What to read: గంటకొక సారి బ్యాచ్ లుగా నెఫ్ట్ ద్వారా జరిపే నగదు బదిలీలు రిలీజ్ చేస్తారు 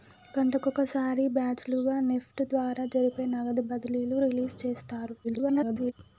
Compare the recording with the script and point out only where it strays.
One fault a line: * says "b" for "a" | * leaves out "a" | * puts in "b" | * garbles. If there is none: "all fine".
* garbles